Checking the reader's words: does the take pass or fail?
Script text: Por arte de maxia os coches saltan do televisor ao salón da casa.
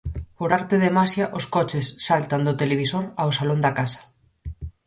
pass